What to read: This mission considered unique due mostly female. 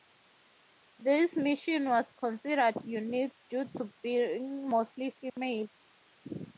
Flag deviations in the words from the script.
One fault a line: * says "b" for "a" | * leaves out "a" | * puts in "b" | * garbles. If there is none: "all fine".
* puts in "was"
* puts in "to being"